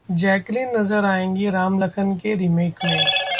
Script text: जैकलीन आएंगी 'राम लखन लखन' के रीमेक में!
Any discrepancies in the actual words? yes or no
yes